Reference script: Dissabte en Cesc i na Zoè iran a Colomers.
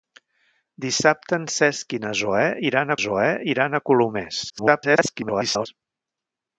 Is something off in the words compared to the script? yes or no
yes